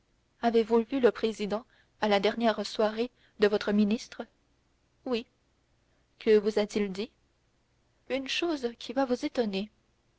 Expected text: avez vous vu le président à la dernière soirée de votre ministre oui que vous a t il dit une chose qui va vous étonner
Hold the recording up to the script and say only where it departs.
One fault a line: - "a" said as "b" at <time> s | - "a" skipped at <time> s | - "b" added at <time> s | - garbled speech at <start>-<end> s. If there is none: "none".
none